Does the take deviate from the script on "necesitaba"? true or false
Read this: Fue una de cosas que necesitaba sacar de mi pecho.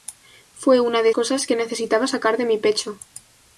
false